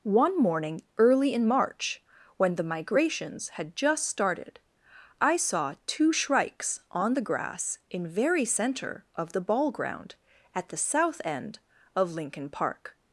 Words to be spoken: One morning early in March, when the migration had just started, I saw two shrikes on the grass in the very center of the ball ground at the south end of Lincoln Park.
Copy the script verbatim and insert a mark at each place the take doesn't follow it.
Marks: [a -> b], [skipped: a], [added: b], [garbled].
One morning early in March, when the [migration -> migrations] had just started, I saw two shrikes on the grass in [skipped: the] very center of the ball ground at the south end of Lincoln Park.